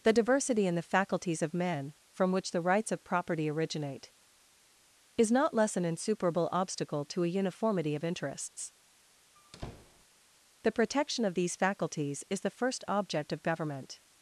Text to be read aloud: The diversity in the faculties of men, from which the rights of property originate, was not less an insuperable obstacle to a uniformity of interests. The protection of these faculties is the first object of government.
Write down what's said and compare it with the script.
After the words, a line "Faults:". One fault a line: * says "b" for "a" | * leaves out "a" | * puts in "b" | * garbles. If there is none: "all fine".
The diversity in the faculties of men, from which the rights of property originate, is not less an insuperable obstacle to a uniformity of interests. The protection of these faculties is the first object of government.
Faults:
* says "is" for "was"